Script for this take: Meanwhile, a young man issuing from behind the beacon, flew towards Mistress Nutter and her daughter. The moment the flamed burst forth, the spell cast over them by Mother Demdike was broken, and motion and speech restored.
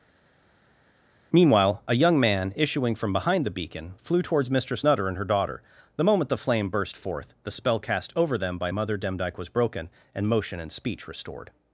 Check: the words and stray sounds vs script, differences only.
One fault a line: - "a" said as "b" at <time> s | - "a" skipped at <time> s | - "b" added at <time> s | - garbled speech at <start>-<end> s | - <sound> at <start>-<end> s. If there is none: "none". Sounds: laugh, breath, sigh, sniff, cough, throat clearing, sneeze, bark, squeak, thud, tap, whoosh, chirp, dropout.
- "flamed" said as "flame" at 6.4 s